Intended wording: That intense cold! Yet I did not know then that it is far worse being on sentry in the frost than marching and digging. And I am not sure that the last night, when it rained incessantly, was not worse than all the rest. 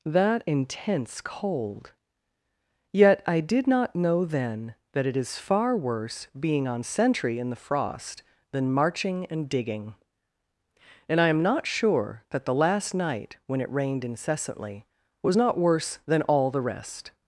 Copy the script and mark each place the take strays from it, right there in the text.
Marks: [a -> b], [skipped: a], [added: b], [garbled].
That intense cold! Yet I did not know then that it is far worse being on sentry in the frost than marching and digging. And I am not sure that the last night, when it rained incessantly, was not worse than all the rest.